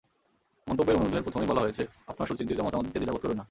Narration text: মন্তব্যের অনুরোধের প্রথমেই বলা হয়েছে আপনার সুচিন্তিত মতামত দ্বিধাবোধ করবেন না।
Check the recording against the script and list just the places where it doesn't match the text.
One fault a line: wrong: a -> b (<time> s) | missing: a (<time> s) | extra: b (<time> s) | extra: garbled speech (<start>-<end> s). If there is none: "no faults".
extra: দিতে (2.9 s)